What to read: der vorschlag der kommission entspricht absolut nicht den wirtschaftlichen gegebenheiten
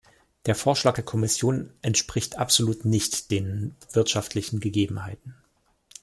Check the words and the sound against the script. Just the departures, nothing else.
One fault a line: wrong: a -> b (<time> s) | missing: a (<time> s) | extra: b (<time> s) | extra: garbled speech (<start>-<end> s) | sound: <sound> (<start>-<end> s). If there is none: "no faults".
no faults